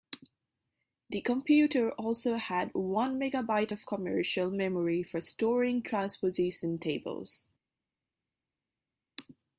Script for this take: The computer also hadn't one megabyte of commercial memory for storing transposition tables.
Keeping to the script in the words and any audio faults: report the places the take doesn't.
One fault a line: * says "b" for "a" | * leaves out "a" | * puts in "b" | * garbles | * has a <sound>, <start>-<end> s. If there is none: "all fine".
* says "had" for "hadn't"